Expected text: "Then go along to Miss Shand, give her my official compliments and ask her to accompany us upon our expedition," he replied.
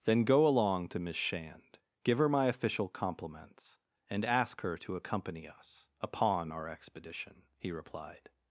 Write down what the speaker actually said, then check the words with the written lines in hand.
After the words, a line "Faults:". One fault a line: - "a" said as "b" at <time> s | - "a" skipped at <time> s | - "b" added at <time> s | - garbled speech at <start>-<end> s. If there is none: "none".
"Then go along to Miss Shand, give her my official compliments and ask her to accompany us upon our expedition," he replied.
Faults:
none